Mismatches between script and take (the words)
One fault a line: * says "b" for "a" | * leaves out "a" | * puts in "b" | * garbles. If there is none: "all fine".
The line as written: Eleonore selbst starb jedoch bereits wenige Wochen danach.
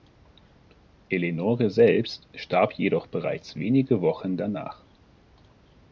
all fine